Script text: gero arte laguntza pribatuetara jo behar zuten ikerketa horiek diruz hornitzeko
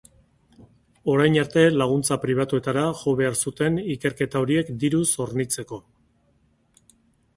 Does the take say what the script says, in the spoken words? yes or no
no